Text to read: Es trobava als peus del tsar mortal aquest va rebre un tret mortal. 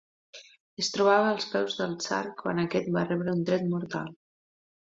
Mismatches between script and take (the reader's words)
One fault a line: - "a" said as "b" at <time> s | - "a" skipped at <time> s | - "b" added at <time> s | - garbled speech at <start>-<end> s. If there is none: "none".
- "mortal" said as "quan" at 2.4 s